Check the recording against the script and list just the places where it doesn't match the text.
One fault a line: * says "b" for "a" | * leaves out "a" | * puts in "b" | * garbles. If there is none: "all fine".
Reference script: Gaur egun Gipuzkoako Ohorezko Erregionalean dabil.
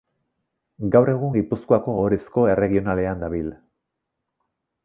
all fine